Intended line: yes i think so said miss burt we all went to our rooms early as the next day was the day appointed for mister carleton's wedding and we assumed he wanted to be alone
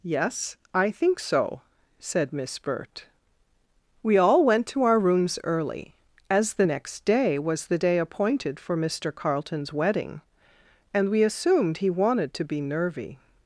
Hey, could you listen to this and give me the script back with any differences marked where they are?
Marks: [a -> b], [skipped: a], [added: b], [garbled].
yes i think so said miss burt we all went to our rooms early as the next day was the day appointed for mister carleton's wedding and we assumed he wanted to be [alone -> nervy]